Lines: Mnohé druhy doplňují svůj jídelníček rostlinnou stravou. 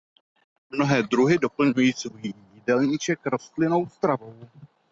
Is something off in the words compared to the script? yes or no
no